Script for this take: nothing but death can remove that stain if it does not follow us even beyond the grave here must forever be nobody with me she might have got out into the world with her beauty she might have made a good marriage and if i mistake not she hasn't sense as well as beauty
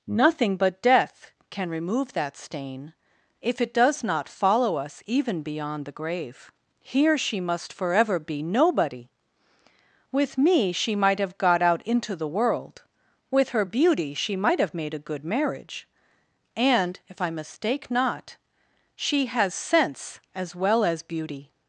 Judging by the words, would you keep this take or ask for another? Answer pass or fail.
fail